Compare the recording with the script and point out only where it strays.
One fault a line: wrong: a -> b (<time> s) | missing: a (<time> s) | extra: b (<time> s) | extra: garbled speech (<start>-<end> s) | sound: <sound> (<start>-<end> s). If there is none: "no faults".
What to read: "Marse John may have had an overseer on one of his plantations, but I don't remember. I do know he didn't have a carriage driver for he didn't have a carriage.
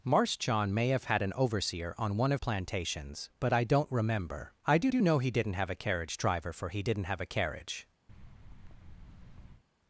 missing: his (2.4 s)
extra: do (4.9 s)
sound: thud (8.1-9.6 s)